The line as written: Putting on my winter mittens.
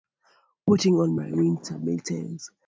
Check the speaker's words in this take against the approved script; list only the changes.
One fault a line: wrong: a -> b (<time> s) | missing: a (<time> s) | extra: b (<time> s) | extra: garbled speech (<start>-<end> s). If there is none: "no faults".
no faults